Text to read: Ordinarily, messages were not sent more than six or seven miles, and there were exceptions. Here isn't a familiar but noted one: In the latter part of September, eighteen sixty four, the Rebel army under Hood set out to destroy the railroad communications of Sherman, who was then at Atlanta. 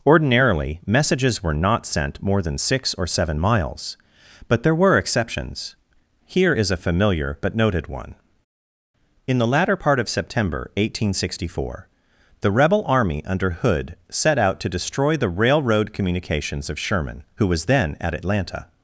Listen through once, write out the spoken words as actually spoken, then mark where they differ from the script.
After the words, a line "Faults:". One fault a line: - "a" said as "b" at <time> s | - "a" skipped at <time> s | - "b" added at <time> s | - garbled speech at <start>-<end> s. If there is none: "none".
Ordinarily, messages were not sent more than six or seven miles, but there were exceptions. Here is a familiar but noted one: In the latter part of September, eighteen sixty four, the Rebel army under Hood set out to destroy the railroad communications of Sherman, who was then at Atlanta.
Faults:
- "and" said as "but" at 4.5 s
- "isn't" said as "is" at 6.5 s